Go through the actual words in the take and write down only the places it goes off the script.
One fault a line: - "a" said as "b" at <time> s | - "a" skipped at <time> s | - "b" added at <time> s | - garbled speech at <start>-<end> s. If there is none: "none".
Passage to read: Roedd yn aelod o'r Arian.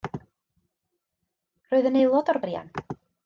none